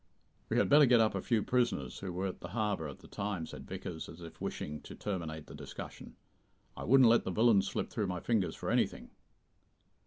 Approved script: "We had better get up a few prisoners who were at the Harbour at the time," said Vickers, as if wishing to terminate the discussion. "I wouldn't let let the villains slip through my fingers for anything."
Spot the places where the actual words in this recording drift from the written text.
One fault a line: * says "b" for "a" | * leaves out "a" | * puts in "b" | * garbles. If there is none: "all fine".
* leaves out "let"